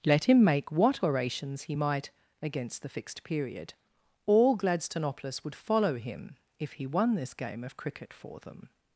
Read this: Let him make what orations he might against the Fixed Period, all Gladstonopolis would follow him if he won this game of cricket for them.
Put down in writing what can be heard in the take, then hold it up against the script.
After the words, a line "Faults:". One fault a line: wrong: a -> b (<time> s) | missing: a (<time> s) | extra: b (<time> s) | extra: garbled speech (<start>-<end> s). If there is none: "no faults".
Let him make what orations he might against the Fixed Period, all Gladstonopolis would follow him if he won this game of cricket for them.
Faults:
no faults